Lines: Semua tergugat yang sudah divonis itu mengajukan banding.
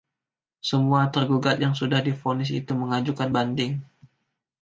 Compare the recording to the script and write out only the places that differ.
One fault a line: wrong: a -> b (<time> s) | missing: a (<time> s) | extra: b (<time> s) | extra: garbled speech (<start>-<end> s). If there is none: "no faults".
no faults